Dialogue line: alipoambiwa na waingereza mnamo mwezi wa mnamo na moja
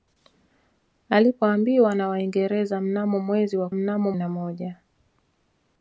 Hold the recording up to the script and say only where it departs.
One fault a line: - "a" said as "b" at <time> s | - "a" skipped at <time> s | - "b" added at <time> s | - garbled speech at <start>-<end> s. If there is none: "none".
none